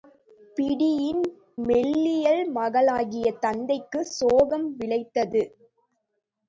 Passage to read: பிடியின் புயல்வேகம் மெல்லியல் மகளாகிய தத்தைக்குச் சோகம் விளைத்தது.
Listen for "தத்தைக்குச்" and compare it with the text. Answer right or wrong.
right